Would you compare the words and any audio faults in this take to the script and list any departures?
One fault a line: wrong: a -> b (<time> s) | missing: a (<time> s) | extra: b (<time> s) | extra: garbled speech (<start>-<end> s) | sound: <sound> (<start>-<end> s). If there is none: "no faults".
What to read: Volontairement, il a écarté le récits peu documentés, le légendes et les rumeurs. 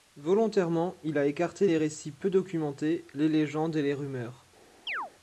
wrong: le -> les (1.6 s)
wrong: le -> les (3.1 s)
sound: chirp (4.9-5.1 s)